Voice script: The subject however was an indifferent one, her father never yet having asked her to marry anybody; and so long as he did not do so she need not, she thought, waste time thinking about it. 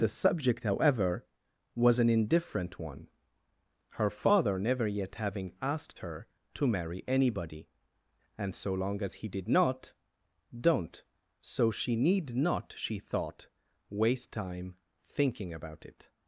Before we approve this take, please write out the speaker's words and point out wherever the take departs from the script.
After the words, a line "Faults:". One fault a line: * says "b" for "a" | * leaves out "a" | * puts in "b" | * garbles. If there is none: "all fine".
The subject however was an indifferent one, her father never yet having asked her to marry anybody; and so long as he did not don't so she need not, she thought, waste time thinking about it.
Faults:
* says "don't" for "do"